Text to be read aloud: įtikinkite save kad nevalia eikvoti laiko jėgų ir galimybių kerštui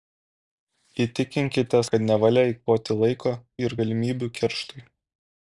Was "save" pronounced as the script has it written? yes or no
no